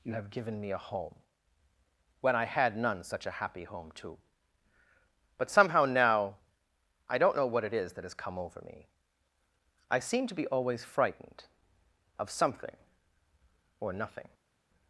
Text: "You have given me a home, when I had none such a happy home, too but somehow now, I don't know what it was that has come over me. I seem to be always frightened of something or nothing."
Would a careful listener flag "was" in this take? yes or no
yes